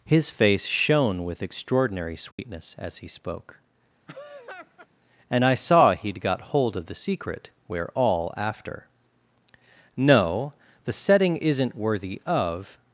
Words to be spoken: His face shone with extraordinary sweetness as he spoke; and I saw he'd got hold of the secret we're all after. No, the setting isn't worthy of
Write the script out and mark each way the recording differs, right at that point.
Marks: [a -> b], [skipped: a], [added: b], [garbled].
His face shone with extraordinary sweetness as he spoke; and I saw he'd got hold of the secret we're all after. No, the setting isn't worthy of